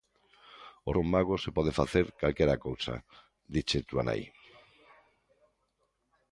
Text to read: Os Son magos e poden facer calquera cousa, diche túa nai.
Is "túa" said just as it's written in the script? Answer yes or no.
yes